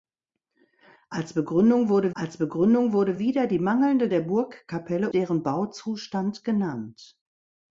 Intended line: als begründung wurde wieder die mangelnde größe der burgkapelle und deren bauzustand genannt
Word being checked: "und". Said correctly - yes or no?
no